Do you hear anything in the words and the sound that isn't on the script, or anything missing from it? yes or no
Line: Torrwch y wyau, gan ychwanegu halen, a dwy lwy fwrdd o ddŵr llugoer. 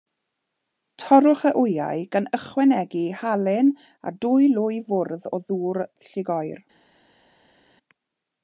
no